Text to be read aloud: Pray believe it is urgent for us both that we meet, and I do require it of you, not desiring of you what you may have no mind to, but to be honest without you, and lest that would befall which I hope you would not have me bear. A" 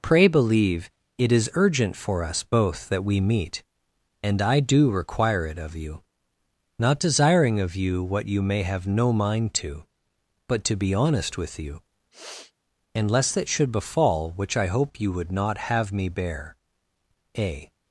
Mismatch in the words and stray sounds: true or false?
true